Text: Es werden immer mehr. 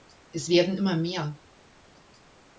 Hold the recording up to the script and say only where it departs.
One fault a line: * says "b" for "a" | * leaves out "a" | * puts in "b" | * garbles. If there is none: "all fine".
all fine